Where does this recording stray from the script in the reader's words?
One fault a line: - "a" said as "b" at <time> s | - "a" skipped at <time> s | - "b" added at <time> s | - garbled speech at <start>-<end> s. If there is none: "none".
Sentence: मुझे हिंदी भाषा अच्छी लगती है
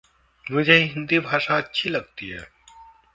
none